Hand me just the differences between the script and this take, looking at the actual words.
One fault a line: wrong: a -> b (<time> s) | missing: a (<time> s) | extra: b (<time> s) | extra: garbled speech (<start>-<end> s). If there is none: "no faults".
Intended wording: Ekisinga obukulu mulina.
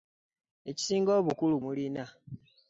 no faults